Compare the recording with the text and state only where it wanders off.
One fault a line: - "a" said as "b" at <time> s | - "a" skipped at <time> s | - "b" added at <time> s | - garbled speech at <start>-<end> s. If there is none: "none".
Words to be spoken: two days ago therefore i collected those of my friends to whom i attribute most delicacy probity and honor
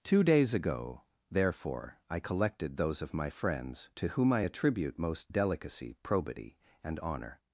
none